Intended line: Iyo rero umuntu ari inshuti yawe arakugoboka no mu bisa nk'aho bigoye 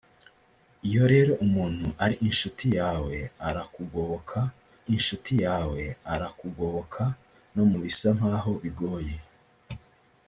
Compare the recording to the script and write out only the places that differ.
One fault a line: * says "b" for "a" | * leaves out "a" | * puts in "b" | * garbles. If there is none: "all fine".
* puts in "inshuti yawe arakugoboka"